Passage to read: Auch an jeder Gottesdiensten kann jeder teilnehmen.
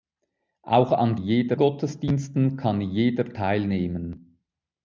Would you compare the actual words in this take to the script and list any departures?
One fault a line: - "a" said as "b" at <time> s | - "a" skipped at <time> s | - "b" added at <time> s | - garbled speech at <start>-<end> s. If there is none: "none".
none